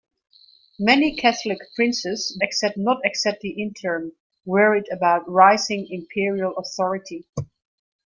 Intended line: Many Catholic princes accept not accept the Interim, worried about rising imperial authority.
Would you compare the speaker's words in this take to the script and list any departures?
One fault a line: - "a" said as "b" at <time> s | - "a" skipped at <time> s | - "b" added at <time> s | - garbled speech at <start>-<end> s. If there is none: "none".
none